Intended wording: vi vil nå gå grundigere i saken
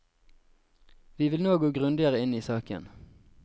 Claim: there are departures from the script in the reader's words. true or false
true